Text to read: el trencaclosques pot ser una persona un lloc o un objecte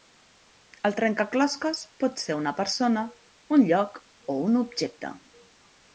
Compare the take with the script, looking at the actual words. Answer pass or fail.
pass